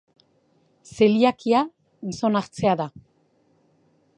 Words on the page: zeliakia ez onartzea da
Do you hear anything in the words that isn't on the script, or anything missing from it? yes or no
no